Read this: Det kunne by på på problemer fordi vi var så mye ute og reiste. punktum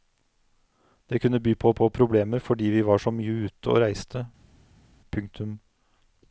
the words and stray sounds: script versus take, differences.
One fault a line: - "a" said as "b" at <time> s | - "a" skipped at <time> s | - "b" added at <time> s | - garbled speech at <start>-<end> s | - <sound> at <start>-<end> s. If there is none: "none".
none